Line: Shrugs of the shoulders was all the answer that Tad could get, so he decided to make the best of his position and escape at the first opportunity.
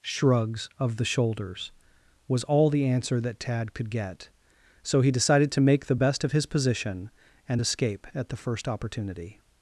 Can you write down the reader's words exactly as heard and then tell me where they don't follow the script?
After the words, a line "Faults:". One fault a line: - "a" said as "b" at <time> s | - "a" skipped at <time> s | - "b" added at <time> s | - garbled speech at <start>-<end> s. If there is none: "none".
Shrugs of the shoulders was all the answer that Tad could get, so he decided to make the best of his position and escape at the first opportunity.
Faults:
none